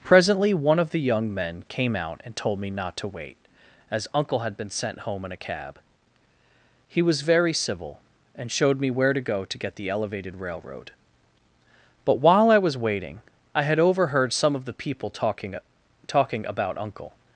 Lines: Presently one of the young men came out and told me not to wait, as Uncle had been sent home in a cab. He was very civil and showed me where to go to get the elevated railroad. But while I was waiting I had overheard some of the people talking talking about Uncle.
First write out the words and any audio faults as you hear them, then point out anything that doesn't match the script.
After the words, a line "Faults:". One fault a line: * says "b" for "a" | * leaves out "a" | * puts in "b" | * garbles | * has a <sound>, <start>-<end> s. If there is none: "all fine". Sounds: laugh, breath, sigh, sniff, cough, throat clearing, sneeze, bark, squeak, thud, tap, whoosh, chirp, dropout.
Presently one of the young men came out and told me not to wait, as Uncle had been sent home in a cab. He was very civil and showed me where to go to get the elevated railroad. But while I was waiting I had overheard some of the people talking talking about Uncle.
Faults:
all fine